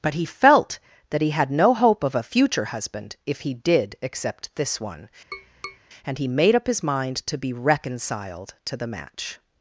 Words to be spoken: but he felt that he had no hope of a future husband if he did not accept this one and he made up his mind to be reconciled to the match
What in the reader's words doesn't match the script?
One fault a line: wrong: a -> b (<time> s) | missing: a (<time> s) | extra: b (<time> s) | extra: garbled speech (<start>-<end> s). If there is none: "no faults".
missing: not (4.0 s)